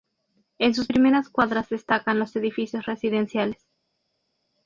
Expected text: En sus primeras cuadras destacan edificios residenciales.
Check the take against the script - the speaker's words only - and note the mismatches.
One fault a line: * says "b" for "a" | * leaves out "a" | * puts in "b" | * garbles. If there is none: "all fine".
* puts in "los"